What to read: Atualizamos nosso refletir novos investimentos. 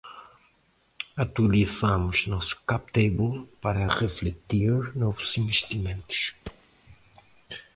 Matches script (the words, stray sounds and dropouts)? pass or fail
fail